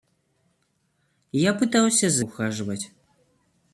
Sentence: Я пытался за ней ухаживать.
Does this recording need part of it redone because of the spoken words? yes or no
yes